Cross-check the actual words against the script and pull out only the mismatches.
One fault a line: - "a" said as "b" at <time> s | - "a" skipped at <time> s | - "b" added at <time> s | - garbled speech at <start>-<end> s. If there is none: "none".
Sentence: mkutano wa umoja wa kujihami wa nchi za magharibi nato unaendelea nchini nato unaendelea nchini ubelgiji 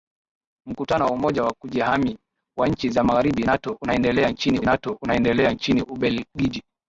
none